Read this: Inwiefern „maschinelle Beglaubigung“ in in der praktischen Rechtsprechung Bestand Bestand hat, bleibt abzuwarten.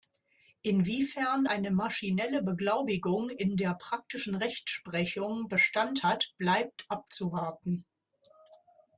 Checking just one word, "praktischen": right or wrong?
right